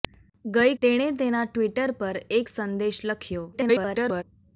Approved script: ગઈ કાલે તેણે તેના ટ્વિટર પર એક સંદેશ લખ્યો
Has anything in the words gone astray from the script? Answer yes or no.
yes